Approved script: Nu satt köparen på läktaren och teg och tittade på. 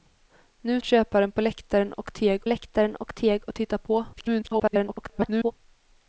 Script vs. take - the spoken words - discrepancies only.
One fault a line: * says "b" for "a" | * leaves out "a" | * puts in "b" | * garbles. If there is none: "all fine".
* leaves out "satt"
* puts in "läktaren och teg"
* garbles